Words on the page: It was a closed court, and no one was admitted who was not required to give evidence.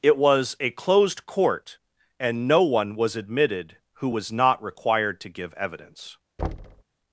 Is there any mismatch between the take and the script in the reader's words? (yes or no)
no